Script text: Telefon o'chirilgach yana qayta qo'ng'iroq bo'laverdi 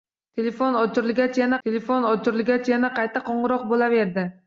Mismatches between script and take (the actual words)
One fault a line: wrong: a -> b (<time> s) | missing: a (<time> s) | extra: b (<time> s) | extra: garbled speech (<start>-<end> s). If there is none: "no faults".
extra: telefon o'chirilgach yana (1.7 s)